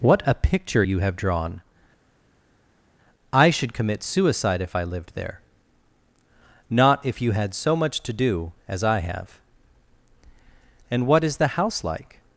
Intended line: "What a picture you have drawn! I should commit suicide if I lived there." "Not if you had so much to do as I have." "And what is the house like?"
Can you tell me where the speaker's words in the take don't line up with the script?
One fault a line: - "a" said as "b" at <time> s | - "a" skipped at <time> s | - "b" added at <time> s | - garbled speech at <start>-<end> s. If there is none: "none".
none